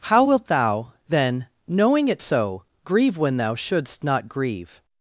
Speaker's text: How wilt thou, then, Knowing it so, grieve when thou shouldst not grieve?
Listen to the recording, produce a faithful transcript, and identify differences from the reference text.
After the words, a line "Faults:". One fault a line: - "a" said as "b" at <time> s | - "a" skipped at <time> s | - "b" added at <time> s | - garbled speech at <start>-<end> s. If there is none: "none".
How wilt thou, then, Knowing it so, grieve when thou shouldst not grieve?
Faults:
none